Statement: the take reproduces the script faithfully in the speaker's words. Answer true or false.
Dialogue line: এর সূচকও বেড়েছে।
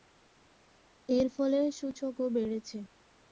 false